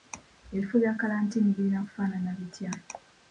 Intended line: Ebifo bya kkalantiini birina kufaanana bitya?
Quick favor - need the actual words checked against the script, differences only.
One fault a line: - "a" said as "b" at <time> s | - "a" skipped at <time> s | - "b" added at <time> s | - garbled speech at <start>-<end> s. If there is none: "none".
none